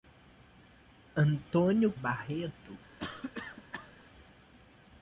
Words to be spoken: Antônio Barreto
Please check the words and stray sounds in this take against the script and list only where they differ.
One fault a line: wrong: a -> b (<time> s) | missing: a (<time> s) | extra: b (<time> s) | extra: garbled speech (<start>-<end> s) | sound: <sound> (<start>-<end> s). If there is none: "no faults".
sound: cough (3.0-3.9 s)